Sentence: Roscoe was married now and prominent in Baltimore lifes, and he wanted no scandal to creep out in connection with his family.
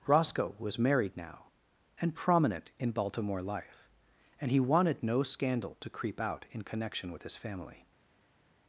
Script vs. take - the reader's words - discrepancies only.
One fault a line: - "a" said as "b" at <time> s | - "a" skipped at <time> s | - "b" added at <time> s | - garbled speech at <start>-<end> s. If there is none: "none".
- "lifes" said as "life" at 3.4 s